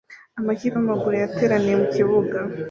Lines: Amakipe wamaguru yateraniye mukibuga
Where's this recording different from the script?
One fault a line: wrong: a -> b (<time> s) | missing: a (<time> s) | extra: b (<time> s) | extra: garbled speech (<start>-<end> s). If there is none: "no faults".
no faults